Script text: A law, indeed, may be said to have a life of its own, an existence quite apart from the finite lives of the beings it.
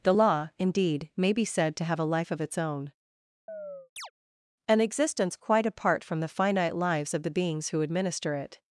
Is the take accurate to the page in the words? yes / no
no